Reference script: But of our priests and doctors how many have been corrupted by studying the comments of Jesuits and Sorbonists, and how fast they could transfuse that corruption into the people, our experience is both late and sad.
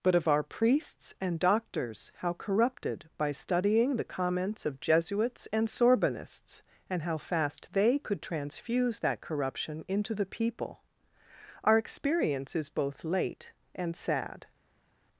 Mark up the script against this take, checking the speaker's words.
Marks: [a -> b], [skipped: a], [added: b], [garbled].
But of our priests and doctors how [skipped: many have been] corrupted by studying the comments of Jesuits and Sorbonists, and how fast they could transfuse that corruption into the people, our experience is both late and sad.